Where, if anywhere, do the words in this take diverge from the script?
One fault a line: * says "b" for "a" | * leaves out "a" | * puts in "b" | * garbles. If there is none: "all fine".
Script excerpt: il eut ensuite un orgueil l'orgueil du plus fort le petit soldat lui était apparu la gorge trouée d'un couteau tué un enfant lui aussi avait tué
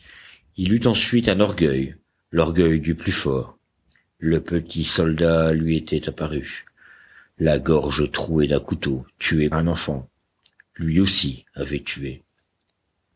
all fine